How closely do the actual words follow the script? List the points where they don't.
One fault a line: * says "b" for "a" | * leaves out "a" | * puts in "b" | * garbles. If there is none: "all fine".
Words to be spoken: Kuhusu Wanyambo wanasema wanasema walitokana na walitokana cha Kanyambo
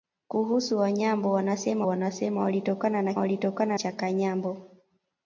all fine